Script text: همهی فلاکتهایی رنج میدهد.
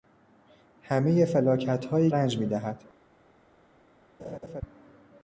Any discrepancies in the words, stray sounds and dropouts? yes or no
yes